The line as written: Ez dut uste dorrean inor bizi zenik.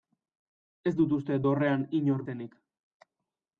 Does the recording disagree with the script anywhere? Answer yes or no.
yes